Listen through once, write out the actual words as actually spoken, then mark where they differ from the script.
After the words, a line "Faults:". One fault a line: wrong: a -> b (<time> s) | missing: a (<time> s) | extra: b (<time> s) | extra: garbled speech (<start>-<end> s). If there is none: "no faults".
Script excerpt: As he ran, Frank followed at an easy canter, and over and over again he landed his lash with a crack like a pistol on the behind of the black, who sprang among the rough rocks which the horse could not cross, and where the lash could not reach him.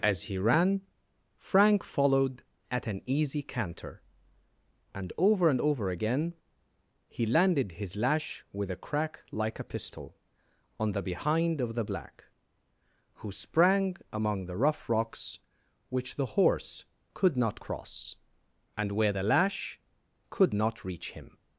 As he ran, Frank followed at an easy canter, and over and over again he landed his lash with a crack like a pistol on the behind of the black, who sprang among the rough rocks which the horse could not cross, and where the lash could not reach him.
Faults:
no faults